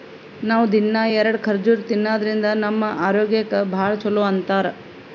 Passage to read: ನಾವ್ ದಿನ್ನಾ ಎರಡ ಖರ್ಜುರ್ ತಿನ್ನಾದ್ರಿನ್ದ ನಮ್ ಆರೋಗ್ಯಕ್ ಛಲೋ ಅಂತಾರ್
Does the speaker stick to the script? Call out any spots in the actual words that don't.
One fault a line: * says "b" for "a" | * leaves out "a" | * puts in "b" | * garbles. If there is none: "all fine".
* puts in "ಭಾಳ್"